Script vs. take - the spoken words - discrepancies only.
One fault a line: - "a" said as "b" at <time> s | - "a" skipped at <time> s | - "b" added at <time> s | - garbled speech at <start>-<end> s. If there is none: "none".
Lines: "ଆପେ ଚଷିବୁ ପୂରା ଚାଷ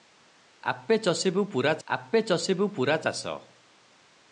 - "ଆପେ ଚଷିବୁ ପୂରା" added at 1.9 s